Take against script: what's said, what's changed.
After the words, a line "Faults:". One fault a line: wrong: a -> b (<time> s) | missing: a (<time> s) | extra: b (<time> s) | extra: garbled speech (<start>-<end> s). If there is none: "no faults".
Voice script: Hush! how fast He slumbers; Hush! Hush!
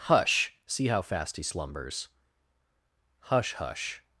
Hush! see how fast He slumbers; Hush! Hush!
Faults:
extra: see (0.7 s)